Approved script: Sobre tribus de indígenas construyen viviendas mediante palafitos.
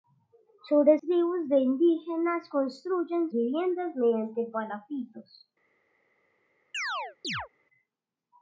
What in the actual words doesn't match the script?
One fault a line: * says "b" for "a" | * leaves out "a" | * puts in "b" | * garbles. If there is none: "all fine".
all fine